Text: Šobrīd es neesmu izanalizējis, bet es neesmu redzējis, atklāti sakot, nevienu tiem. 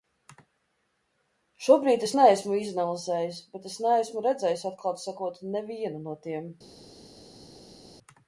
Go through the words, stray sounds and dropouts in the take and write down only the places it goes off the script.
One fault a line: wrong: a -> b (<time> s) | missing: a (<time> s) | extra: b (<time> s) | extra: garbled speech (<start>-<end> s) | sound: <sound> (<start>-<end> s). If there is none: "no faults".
extra: no (6.0 s)